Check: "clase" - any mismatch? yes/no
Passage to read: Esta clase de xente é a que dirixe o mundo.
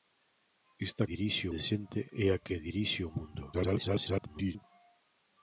yes